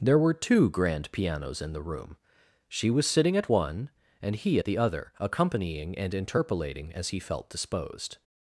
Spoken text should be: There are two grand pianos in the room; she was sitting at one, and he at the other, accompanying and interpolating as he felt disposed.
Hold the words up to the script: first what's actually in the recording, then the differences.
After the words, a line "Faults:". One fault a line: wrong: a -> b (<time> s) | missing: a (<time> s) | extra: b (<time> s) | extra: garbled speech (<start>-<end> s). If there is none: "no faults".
There were two grand pianos in the room; she was sitting at one, and he at the other, accompanying and interpolating as he felt disposed.
Faults:
wrong: are -> were (0.2 s)